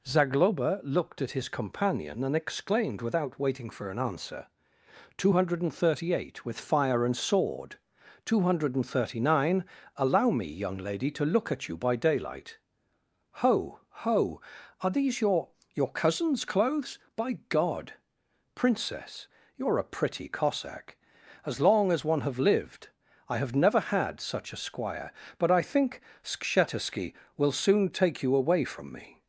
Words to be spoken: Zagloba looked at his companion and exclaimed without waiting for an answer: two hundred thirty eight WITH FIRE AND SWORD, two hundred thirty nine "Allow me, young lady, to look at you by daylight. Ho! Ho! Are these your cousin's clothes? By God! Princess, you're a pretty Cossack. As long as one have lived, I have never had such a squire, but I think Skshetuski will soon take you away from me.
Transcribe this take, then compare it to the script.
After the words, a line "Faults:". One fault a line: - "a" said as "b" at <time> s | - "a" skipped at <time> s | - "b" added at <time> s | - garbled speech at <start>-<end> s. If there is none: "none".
Zagloba looked at his companion and exclaimed without waiting for an answer: two hundred thirty eight WITH FIRE AND SWORD, two hundred thirty nine "Allow me, young lady, to look at you by daylight. Ho! Ho! Are these your your cousin's clothes? By God! Princess, you're a pretty Cossack. As long as one have lived, I have never had such a squire, but I think Skshetuski will soon take you away from me.
Faults:
- "your" added at 15.7 s